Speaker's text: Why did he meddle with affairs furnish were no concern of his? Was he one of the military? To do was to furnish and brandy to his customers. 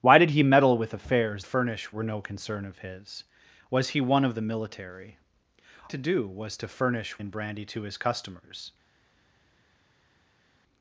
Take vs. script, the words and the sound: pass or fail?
pass